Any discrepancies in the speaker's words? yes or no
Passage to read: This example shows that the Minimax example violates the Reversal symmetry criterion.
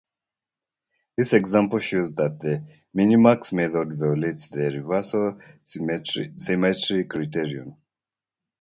yes